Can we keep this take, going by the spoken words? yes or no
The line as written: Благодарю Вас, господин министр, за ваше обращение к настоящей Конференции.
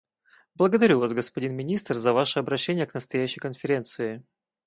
yes